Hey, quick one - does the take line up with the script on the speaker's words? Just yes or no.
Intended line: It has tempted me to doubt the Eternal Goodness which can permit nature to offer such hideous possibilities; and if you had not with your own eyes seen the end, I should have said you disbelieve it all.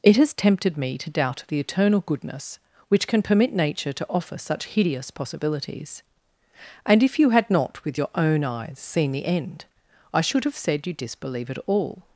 yes